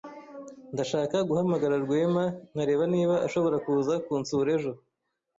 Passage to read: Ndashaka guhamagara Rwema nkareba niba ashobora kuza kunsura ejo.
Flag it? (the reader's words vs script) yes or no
no